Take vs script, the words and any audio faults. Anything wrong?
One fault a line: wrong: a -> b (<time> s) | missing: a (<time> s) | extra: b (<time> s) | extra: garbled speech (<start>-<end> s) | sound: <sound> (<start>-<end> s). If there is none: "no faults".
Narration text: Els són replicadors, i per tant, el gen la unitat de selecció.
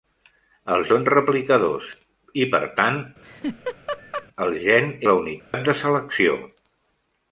sound: laugh (3.2-4.3 s)
sound: dropout (5.4-5.5 s)